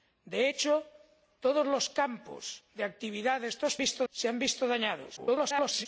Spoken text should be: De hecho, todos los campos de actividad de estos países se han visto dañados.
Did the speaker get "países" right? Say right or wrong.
wrong